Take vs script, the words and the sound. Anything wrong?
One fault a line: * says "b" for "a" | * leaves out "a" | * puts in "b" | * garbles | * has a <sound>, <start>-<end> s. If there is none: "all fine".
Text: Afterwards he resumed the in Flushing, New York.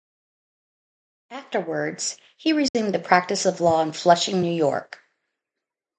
* has a dropout, 2.7-2.7 s
* puts in "practice of law"